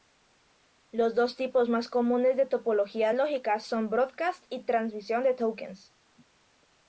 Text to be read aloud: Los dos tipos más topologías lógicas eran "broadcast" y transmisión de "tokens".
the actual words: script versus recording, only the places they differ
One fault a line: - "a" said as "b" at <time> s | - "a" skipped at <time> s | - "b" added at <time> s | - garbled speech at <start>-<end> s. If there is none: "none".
- "comunes de" added at 1.9 s
- "eran" said as "son" at 3.6 s